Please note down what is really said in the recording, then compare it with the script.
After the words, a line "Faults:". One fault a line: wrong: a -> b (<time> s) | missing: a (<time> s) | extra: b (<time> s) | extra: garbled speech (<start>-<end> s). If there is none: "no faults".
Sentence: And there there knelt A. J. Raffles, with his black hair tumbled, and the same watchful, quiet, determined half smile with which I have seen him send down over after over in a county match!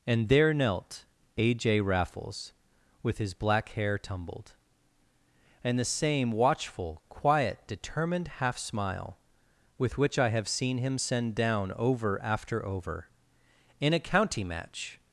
And there knelt A. J. Raffles, with his black hair tumbled, and the same watchful, quiet, determined half smile with which I have seen him send down over after over in a county match!
Faults:
missing: there (0.5 s)